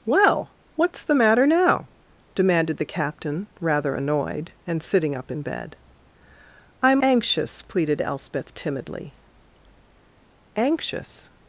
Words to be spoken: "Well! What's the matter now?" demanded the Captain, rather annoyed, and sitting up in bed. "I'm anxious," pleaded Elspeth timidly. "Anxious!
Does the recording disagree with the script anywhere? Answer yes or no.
no